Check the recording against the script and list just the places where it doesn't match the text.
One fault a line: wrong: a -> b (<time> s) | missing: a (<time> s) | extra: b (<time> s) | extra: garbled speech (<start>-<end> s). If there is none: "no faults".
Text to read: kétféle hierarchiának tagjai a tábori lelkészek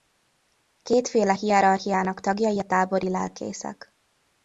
no faults